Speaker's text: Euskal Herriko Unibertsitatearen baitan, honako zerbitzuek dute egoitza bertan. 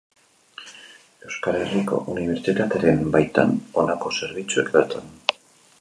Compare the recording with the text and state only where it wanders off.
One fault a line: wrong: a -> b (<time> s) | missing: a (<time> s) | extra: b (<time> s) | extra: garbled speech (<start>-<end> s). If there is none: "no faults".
missing: dute egoitza (4.7 s)